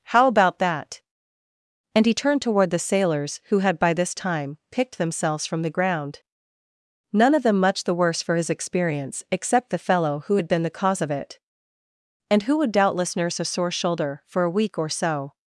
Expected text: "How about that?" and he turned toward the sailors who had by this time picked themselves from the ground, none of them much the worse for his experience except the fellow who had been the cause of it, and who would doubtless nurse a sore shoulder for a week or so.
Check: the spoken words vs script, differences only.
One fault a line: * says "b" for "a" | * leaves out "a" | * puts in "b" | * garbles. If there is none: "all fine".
all fine